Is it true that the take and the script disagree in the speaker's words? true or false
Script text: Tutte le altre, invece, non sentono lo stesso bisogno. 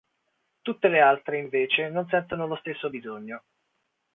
false